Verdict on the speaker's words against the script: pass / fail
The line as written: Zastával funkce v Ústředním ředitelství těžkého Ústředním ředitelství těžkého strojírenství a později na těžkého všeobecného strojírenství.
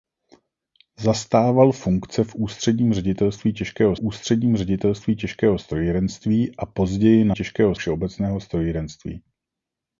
pass